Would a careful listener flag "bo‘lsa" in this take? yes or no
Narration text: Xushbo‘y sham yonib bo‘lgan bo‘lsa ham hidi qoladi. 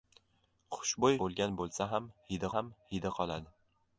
yes